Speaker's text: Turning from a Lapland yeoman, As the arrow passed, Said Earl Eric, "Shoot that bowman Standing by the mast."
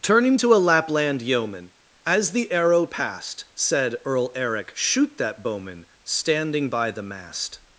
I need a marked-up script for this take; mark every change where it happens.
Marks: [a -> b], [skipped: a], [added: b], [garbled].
Turning [from -> to] a Lapland yeoman, As the arrow passed, Said Earl Eric, "Shoot that bowman Standing by the mast."